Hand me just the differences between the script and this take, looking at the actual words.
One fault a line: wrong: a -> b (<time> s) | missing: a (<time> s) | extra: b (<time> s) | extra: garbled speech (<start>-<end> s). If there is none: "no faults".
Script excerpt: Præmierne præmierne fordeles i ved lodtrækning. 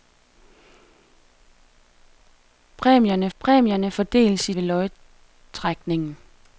no faults